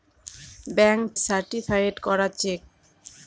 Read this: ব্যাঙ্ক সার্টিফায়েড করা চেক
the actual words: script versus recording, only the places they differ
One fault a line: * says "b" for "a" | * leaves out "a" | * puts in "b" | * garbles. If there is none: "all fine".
all fine